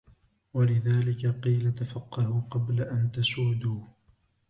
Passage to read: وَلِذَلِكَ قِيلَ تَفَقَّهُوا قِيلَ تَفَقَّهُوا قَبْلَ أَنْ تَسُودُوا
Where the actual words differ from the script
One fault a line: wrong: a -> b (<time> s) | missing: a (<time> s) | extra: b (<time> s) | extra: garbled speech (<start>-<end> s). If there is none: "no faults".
missing: قِيلَ تَفَقَّهُوا (2.4 s)